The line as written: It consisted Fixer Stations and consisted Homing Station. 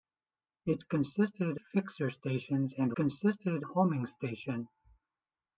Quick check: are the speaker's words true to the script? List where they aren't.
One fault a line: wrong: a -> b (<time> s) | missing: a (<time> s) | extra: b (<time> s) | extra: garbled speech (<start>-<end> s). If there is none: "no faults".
no faults